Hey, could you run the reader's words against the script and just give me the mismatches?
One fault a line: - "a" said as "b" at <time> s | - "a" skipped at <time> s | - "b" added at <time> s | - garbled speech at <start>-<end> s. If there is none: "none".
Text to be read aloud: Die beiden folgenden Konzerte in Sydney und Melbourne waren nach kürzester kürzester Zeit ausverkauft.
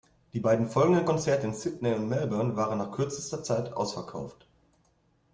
- "kürzester" skipped at 3.4 s